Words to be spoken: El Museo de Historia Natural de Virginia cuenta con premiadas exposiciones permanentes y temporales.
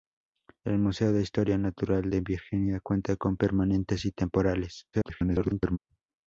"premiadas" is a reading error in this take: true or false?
true